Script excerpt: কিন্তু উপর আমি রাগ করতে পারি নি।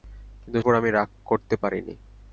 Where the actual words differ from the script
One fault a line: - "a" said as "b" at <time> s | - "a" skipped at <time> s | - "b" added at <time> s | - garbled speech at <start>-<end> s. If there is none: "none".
none